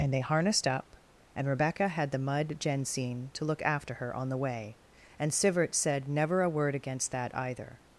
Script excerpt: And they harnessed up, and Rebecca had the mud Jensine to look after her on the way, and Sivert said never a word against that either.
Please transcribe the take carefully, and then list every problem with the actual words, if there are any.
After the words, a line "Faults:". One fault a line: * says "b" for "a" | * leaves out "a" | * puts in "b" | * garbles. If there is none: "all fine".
And they harnessed up, and Rebecca had the mud Jensine to look after her on the way, and Sivert said never a word against that either.
Faults:
all fine